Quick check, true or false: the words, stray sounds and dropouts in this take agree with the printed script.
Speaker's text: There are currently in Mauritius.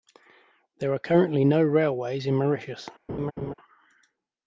false